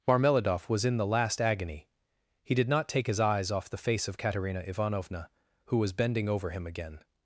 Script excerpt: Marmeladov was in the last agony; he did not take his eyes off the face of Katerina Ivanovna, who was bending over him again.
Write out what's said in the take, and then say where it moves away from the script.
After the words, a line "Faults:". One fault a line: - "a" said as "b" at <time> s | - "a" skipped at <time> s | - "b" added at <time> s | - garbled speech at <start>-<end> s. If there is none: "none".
Marmeladov was in the last agony; he did not take his eyes off the face of Katerina Ivanovna, who was bending over him again.
Faults:
none